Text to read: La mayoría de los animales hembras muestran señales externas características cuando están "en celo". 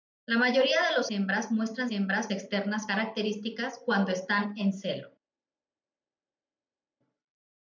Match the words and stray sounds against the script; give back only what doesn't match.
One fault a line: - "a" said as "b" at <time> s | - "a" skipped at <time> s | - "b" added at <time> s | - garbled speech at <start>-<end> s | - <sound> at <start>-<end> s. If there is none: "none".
- "animales" skipped at 1.1 s
- "señales" said as "hembras" at 1.9 s